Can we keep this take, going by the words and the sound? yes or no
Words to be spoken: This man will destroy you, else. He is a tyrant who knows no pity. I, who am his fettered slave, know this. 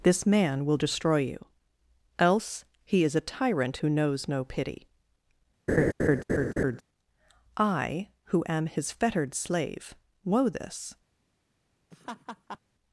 no